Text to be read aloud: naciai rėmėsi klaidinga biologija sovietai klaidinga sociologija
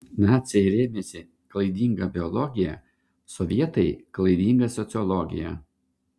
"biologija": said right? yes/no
yes